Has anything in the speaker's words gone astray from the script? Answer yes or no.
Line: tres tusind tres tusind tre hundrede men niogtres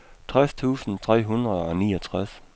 yes